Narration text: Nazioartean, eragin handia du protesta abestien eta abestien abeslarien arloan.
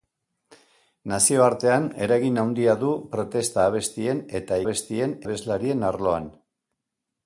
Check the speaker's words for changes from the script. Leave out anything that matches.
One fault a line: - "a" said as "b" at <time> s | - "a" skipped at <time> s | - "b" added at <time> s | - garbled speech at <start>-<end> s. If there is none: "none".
none